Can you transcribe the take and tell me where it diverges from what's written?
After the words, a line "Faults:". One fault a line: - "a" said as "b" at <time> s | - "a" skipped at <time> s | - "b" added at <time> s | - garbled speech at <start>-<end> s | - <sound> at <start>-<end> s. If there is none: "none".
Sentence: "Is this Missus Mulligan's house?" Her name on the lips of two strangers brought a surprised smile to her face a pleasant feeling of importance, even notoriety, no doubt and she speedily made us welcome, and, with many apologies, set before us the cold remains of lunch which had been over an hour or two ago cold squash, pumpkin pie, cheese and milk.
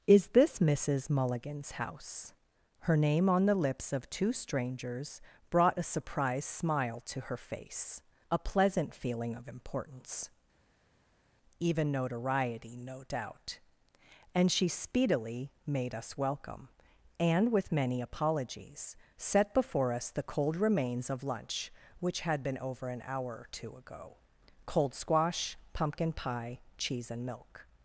"Is this Missus Mulligan's house?" Her name on the lips of two strangers brought a surprised smile to her face a pleasant feeling of importance, even notoriety, no doubt and she speedily made us welcome, and, with many apologies, set before us the cold remains of lunch which had been over an hour or two ago cold squash, pumpkin pie, cheese and milk.
Faults:
none